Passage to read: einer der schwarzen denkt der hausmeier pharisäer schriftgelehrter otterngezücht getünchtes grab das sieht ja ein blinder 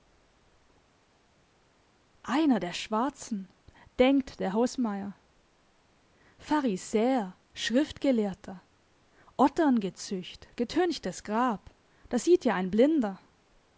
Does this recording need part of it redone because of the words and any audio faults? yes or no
no